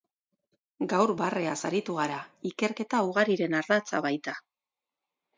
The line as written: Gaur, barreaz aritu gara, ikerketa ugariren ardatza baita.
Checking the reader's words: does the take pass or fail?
pass